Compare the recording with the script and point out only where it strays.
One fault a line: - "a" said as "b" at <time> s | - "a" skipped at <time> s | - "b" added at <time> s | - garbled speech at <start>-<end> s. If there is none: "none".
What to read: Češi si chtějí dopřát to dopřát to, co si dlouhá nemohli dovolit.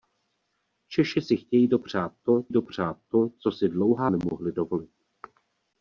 none